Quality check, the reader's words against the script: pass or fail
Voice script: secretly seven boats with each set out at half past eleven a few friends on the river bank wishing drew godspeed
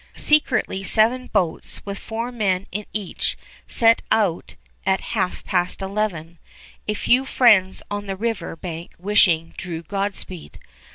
fail